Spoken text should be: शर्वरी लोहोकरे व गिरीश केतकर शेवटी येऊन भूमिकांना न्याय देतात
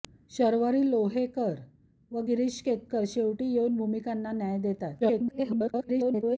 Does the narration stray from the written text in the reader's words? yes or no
yes